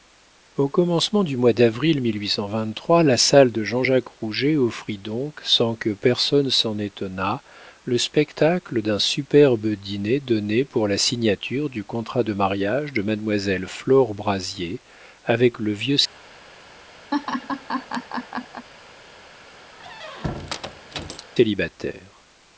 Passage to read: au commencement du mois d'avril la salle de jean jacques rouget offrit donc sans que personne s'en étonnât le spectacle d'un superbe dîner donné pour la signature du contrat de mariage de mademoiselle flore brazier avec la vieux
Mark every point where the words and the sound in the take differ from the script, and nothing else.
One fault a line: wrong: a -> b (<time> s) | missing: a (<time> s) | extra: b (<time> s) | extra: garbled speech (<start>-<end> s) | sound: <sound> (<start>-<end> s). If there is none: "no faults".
wrong: la -> le (15.6 s)
sound: laugh (17.1-18.7 s)
sound: squeak (19.7-21.3 s)